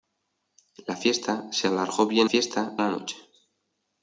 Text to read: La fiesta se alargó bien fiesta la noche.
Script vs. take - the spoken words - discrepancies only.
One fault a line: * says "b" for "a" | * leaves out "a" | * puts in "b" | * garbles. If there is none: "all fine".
all fine